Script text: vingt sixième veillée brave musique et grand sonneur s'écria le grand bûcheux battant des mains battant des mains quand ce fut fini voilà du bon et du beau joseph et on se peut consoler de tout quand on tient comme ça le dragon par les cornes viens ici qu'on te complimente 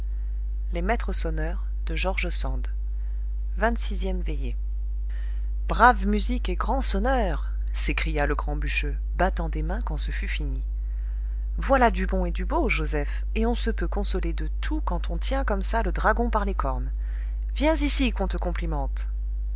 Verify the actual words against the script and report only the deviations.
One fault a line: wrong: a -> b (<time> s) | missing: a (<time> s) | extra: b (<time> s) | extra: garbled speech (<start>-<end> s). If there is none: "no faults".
missing: battant des mains (9.8 s)